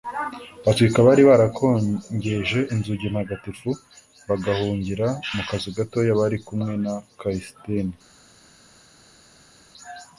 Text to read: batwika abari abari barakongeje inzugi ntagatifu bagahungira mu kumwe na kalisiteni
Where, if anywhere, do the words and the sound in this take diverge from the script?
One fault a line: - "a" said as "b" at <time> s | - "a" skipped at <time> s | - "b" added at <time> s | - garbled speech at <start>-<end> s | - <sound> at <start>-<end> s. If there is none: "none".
- "abari" skipped at 1.2 s
- "kazu gatoya bari" added at 5.5 s